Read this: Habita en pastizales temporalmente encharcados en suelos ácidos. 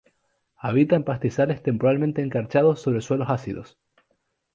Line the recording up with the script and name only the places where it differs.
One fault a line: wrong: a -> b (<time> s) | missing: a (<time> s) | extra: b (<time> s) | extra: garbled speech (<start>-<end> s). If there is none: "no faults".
wrong: en -> sobre (2.8 s)